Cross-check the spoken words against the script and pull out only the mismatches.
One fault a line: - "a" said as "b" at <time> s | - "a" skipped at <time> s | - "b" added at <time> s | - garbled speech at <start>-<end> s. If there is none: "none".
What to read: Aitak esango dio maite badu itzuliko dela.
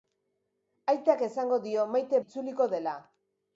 - "badu" skipped at 2.2 s